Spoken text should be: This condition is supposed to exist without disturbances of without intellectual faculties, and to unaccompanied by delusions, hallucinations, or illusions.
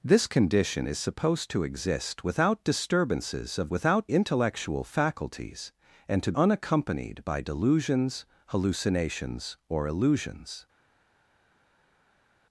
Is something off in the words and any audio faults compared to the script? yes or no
no